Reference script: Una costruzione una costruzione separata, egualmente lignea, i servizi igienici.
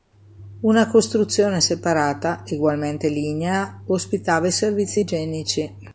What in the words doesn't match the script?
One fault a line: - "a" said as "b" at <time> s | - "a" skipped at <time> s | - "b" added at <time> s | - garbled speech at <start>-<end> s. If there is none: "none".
- "una costruzione" skipped at 1.6 s
- "ospitava" added at 3.9 s